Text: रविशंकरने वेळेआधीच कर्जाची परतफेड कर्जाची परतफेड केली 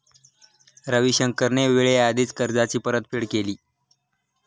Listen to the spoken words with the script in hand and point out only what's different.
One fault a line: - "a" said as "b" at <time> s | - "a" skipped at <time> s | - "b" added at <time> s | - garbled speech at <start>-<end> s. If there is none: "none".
- "कर्जाची परतफेड" skipped at 3.2 s